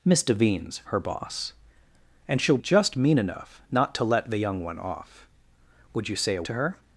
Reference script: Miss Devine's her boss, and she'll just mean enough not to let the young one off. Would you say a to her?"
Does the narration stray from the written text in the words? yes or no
no